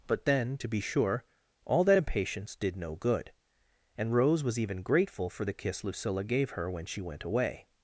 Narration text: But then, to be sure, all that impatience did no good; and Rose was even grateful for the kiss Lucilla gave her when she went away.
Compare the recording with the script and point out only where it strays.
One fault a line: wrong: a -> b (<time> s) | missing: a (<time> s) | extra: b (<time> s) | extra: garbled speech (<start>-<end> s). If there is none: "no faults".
no faults